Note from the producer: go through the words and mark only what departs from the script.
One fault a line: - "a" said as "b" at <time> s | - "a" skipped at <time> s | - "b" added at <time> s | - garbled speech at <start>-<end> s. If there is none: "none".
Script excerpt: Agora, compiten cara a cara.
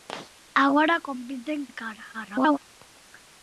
- "cara" skipped at 1.6 s
- garbled speech at 2.1-2.6 s